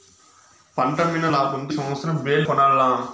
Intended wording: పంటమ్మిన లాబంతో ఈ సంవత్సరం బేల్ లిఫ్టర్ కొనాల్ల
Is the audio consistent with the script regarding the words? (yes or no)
no